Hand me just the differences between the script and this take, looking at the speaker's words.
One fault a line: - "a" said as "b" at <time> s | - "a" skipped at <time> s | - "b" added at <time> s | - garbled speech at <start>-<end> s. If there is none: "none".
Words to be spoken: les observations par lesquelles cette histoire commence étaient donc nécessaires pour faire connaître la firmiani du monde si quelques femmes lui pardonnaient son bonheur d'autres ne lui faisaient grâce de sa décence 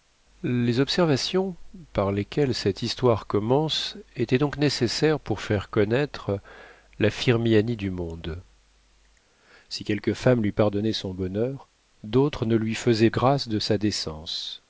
none